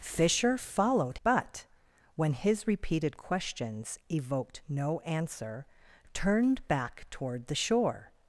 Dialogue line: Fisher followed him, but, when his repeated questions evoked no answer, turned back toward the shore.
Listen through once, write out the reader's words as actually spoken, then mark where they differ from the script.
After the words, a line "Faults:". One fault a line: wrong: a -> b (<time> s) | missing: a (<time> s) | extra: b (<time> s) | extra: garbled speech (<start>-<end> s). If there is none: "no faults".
Fisher followed but, when his repeated questions evoked no answer, turned back toward the shore.
Faults:
missing: him (1.2 s)